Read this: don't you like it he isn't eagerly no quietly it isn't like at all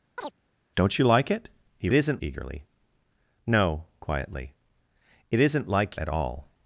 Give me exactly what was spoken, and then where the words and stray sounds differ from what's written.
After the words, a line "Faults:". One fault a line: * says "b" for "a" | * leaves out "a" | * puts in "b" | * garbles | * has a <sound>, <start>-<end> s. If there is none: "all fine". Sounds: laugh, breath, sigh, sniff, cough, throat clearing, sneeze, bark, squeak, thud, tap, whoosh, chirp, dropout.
don't you like it he isn't eagerly no quietly it isn't like at all
Faults:
* has a chirp, 0.2-0.3 s